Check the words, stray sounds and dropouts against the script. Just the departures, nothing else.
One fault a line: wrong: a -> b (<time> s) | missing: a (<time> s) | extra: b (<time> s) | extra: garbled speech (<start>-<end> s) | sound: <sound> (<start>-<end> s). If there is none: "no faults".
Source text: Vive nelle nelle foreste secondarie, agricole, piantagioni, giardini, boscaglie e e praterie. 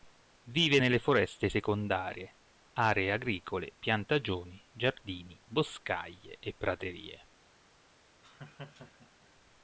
missing: nelle (1.0 s)
extra: aree (2.7 s)
missing: e (6.5 s)
sound: laugh (8.2-9.3 s)